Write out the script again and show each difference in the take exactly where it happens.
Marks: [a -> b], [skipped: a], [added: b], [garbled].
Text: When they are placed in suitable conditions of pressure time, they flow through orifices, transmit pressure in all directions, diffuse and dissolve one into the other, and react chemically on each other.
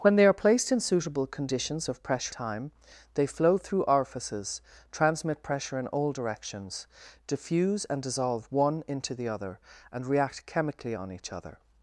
When they are placed in suitable conditions of pressure time, they flow through orifices, transmit pressure in all directions, diffuse and dissolve one into the other, and react chemically on each other.